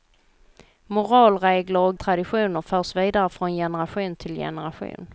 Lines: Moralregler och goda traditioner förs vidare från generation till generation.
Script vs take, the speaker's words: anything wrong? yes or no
yes